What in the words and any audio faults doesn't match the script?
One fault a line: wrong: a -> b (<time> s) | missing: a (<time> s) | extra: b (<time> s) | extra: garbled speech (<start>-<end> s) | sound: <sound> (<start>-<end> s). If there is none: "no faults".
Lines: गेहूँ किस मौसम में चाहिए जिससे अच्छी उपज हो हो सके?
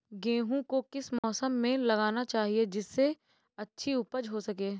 extra: को (0.7 s)
sound: dropout (1.2-1.2 s)
extra: लगाना (1.8 s)
missing: हो (4.4 s)